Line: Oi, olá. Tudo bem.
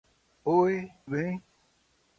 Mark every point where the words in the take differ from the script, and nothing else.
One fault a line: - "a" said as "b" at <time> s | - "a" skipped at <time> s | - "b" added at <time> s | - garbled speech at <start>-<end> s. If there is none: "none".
- "olá Tudo" skipped at 0.9 s